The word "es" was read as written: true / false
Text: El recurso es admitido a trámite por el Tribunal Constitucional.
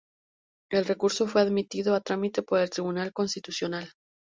false